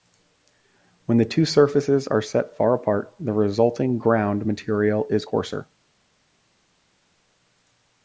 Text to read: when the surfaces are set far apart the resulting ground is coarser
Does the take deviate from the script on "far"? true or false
false